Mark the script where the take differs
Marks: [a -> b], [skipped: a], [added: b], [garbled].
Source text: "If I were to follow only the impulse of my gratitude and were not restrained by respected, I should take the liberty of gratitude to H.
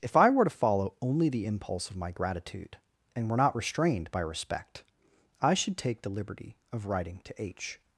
"If I were to follow only the impulse of my gratitude and were not restrained by [respected, -> respect] I should take the liberty of [gratitude -> writing] to H.